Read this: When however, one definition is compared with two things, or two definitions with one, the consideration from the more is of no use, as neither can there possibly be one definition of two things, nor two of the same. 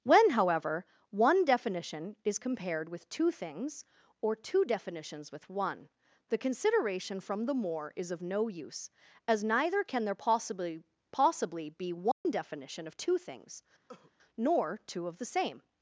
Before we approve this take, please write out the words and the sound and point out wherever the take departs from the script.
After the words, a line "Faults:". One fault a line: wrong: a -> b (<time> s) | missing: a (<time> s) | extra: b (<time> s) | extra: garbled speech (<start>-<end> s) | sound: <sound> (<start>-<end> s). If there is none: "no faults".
When however, one definition is compared with two things, or two definitions with one, the consideration from the more is of no use, as neither can there possibly possibly be one definition of two things, nor two of the same.
Faults:
extra: possibly (11.1 s)
sound: dropout (12.1-12.3 s)
sound: cough (13.9-14.1 s)